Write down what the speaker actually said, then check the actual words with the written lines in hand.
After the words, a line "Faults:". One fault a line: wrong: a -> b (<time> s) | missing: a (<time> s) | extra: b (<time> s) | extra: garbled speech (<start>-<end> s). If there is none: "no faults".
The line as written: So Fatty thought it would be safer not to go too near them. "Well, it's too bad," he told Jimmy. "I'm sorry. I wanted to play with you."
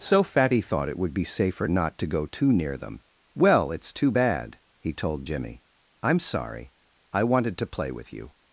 So Fatty thought it would be safer not to go too near them. "Well, it's too bad," he told Jimmy. "I'm sorry. I wanted to play with you."
Faults:
no faults